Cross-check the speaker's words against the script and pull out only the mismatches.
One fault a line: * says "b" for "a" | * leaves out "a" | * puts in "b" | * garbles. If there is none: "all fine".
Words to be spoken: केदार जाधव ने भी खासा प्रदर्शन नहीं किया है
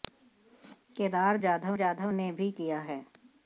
* puts in "जाधव"
* leaves out "खासा प्रदर्शन नहीं"